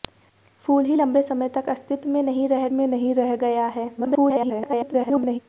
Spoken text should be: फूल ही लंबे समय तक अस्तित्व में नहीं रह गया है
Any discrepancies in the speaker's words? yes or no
yes